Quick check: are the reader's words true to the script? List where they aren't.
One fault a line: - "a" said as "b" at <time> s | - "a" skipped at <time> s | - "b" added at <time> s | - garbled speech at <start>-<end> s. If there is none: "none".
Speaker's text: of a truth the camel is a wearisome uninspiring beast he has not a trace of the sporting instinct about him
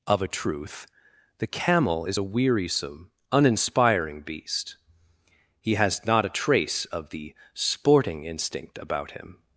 none